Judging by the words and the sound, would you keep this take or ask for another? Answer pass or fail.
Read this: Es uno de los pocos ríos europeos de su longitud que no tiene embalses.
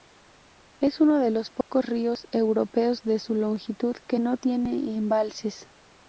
fail